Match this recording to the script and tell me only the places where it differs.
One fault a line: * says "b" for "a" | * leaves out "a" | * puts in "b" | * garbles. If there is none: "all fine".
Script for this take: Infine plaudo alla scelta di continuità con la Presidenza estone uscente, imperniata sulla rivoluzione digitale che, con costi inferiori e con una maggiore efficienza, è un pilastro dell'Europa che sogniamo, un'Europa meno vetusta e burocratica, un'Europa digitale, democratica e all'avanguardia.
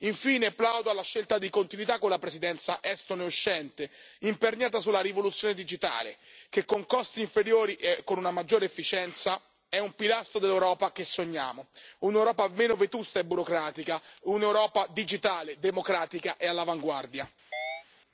all fine